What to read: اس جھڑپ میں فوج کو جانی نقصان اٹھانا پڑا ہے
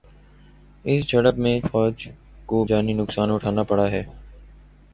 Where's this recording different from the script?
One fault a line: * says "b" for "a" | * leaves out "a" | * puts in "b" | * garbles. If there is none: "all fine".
all fine